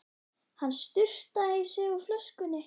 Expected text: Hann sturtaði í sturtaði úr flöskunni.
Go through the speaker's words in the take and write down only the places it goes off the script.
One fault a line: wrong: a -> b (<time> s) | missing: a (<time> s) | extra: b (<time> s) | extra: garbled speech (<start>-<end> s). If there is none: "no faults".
wrong: sturtaði -> sig (1.7 s)